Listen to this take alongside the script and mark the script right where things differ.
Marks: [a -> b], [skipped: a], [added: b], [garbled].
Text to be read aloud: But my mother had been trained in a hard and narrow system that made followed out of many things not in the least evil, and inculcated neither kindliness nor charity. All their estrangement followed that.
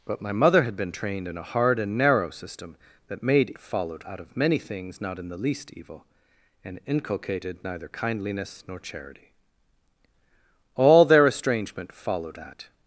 But my mother had been trained in a hard and narrow system that made followed out of many things not in the least evil, and inculcated neither kindliness nor charity. All their estrangement followed that.